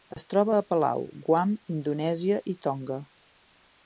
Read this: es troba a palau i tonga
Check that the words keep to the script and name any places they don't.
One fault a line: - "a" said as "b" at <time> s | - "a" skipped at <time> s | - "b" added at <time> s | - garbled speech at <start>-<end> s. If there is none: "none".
- "guam indonèsia" added at 1.3 s